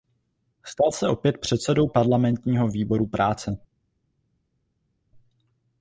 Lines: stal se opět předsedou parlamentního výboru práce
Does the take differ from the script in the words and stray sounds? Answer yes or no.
no